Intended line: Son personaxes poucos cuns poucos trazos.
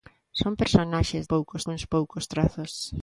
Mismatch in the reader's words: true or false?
false